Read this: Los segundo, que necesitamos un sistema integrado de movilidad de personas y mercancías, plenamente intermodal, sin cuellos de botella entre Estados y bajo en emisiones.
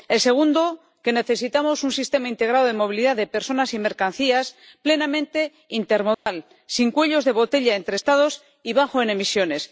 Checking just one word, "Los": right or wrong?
wrong